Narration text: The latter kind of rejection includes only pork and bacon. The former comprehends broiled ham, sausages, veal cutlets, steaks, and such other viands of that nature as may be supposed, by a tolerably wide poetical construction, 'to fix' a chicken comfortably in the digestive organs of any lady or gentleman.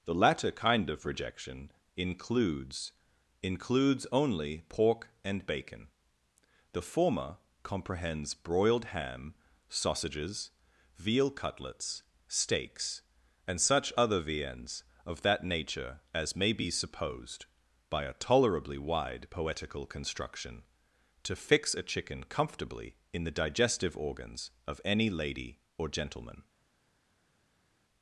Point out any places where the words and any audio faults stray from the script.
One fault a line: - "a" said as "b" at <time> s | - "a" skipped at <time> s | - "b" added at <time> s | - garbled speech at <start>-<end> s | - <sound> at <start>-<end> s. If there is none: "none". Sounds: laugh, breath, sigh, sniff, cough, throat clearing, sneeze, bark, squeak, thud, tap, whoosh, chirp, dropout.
- "includes" added at 3.4 s